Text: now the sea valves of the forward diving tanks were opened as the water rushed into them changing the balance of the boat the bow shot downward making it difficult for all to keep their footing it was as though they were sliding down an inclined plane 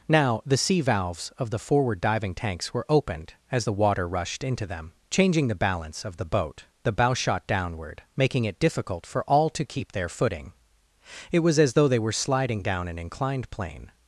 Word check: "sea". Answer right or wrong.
right